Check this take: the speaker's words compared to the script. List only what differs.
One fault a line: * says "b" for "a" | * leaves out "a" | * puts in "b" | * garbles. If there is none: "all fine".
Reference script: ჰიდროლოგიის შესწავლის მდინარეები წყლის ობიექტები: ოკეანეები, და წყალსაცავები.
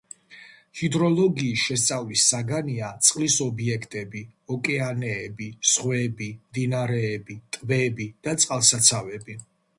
* says "საგანია" for "მდინარეები"
* puts in "ზღვები მდინარეები ტბები"